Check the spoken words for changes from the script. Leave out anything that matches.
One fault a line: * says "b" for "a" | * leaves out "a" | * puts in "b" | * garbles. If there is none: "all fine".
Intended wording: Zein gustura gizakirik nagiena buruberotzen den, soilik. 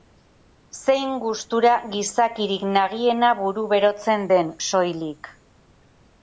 all fine